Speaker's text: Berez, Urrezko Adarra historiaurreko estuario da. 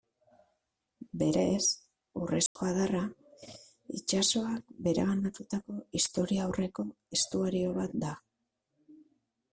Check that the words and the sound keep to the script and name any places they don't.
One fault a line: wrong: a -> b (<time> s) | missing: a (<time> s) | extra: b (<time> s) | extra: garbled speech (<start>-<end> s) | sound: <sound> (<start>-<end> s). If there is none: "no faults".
sound: dropout (2.5-2.6 s)
extra: itsasoak bereganatutako (4.0 s)
extra: bat (7.8 s)